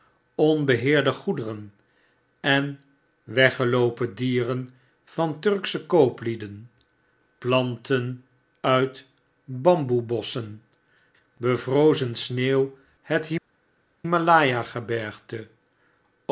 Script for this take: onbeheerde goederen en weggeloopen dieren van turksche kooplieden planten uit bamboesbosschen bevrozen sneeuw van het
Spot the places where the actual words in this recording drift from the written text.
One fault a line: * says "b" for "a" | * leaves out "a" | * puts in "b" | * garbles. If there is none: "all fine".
* leaves out "van"